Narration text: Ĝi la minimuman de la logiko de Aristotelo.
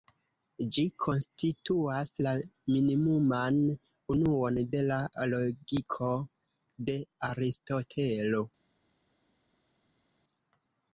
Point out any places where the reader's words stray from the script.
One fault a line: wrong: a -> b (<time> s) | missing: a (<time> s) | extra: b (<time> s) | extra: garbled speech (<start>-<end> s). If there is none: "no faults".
extra: konstituas (1.0 s)
extra: unuon (4.2 s)